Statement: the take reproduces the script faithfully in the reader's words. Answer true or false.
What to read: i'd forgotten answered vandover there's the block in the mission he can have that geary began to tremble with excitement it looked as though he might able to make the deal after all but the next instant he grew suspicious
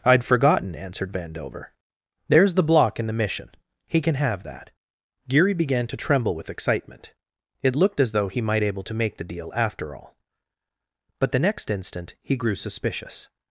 true